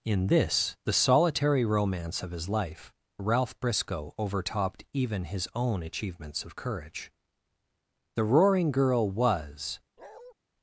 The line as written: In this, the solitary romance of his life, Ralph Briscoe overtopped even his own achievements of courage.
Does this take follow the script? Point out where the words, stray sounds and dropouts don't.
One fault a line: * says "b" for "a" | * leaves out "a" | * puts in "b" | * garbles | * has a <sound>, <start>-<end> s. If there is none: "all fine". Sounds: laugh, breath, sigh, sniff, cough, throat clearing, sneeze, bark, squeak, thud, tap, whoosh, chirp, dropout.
* puts in "The Roaring Girl was"
* has a bark, 10.0-10.3 s